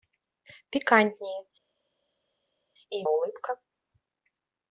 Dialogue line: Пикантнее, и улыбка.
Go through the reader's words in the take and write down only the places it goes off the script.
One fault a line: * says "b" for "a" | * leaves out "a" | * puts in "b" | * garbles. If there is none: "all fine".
all fine